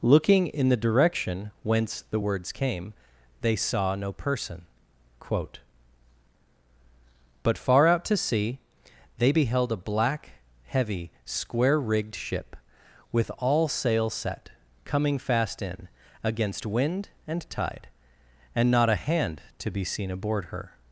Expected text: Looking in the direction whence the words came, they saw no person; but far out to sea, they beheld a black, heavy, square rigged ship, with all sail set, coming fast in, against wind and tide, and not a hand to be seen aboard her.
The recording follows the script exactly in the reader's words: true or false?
false